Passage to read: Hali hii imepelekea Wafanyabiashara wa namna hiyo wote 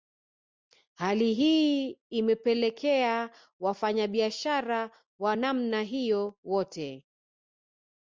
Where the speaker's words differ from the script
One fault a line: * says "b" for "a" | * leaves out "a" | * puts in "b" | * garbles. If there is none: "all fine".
all fine